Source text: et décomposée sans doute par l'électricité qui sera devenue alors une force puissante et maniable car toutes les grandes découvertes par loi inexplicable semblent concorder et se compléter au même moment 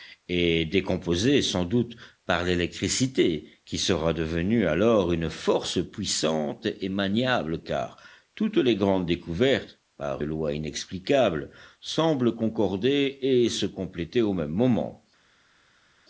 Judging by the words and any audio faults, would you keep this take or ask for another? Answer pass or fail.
pass